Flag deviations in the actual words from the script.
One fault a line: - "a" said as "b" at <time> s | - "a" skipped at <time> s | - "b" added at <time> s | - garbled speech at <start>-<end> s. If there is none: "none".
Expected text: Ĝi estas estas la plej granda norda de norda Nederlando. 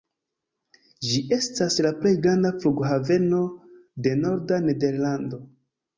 - "estas" skipped at 1.8 s
- "norda" said as "flughaveno" at 2.6 s